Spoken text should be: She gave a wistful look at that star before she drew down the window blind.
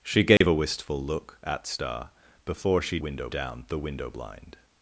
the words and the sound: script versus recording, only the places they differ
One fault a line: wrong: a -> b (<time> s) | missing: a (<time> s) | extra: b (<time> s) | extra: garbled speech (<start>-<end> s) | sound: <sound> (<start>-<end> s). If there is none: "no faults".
sound: dropout (0.4-0.4 s)
missing: that (1.6 s)
wrong: drew -> window (3.0 s)